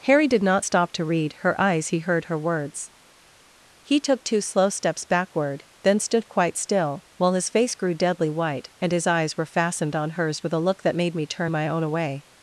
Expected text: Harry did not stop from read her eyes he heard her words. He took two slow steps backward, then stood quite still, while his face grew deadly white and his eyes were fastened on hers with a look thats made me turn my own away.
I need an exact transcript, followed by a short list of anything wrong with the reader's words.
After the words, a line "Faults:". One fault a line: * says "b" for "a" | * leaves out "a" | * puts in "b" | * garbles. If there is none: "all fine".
Harry did not stop to read her eyes he heard her words. He took two slow steps backward, then stood quite still, while his face grew deadly white and his eyes were fastened on hers with a look that made me turn my own away.
Faults:
* says "to" for "from"
* says "that" for "thats"